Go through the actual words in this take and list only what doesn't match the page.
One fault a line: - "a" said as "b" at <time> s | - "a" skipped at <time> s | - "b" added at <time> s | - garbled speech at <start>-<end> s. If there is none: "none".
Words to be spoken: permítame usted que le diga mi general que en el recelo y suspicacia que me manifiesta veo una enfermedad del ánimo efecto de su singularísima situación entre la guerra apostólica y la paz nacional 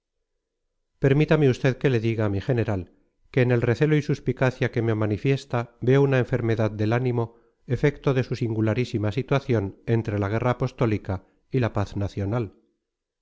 none